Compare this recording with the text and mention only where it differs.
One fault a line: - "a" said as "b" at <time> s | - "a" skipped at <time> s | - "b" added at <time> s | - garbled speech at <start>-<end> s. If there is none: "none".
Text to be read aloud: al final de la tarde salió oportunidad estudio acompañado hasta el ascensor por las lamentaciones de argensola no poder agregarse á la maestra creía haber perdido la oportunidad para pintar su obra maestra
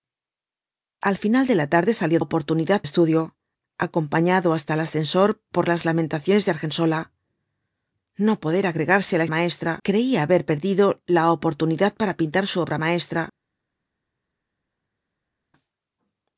none